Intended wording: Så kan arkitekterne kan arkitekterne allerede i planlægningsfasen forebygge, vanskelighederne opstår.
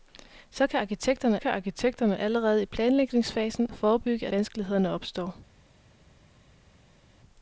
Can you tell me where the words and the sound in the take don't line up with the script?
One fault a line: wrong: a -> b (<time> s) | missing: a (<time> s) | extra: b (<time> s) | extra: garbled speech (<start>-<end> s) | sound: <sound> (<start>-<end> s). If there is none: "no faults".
no faults